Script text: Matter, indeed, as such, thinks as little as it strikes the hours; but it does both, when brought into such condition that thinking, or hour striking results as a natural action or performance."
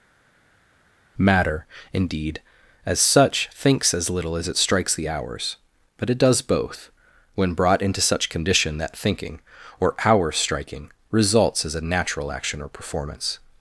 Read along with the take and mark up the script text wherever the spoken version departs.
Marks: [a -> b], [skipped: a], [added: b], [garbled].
Matter, indeed, as such, thinks as little as it strikes the hours; but it does both, when brought into such condition that thinking, or hour striking results as a natural action or performance."